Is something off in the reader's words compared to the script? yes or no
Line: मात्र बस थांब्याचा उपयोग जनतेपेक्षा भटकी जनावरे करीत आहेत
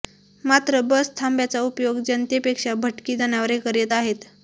no